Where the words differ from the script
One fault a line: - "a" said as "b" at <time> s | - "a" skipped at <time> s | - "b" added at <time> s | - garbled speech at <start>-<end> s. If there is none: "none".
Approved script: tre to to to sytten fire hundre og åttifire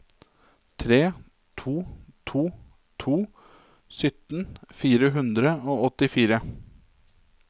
none